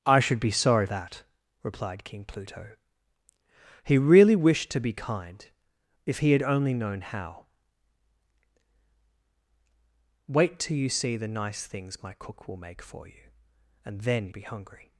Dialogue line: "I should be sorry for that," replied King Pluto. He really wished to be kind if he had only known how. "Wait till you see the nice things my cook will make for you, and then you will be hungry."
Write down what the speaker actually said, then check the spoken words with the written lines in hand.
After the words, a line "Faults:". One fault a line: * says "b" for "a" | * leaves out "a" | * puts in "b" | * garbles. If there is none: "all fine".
"I should be sorry that," replied King Pluto. He really wished to be kind if he had only known how. "Wait till you see the nice things my cook will make for you, and then be hungry."
Faults:
* leaves out "for"
* leaves out "you will"